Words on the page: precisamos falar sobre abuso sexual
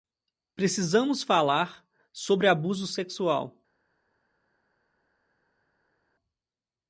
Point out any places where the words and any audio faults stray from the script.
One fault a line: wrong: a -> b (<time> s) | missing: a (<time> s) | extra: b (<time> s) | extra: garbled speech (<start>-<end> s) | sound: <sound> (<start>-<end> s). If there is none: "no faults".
no faults